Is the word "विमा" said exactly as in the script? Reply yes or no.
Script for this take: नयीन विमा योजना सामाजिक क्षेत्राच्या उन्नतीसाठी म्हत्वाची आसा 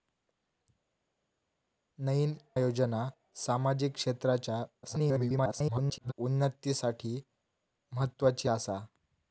no